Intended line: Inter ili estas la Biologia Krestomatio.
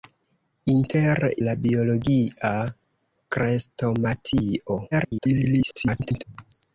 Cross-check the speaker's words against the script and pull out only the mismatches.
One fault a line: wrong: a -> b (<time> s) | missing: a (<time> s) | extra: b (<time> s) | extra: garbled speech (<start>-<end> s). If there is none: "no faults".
missing: ili estas (1.2 s)
extra: garbled speech (4.9-6.2 s)